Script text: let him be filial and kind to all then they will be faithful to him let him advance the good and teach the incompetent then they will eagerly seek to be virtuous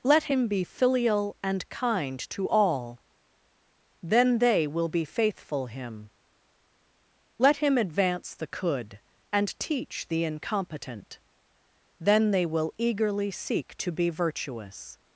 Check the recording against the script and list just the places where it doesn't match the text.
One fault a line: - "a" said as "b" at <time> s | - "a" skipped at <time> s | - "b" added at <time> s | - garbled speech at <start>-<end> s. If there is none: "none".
- "to" skipped at 5.7 s
- "good" said as "could" at 8.5 s